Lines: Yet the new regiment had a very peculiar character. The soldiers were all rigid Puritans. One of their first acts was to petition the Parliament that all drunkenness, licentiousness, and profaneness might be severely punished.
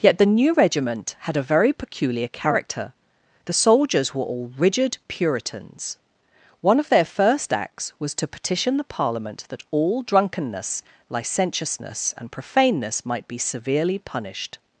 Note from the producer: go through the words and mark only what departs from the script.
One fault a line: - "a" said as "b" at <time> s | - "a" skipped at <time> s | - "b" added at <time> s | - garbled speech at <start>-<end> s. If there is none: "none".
none